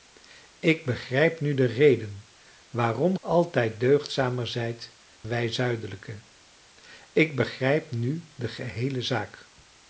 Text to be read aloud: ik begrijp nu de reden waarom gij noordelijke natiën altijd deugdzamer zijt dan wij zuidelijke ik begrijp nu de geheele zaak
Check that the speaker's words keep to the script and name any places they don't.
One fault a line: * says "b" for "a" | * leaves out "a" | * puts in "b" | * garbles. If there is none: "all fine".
* leaves out "gij noordelijke natiën"
* leaves out "dan"